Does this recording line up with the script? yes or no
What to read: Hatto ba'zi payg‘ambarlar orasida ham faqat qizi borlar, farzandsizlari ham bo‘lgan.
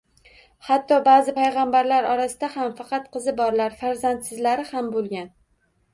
yes